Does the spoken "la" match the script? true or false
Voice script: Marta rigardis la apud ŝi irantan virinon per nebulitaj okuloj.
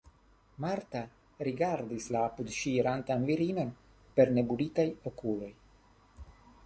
true